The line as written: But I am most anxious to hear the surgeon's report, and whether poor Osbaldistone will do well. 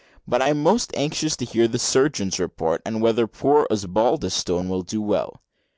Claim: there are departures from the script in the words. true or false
false